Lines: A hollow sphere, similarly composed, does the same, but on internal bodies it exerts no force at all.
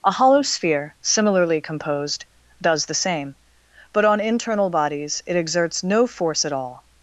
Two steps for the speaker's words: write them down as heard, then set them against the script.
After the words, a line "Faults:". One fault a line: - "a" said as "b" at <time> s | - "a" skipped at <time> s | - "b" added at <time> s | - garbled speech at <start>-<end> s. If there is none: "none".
A hollow sphere, similarly composed, does the same, but on internal bodies it exerts no force at all.
Faults:
none